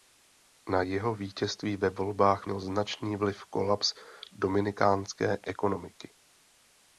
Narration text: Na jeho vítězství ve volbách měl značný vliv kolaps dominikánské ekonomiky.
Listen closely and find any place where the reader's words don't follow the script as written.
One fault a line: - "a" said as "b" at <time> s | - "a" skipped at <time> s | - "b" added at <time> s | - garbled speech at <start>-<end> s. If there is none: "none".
none